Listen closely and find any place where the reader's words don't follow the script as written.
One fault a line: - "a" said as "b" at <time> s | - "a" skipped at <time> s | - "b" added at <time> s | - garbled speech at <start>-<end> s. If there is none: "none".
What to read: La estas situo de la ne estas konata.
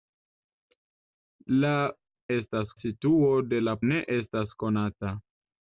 none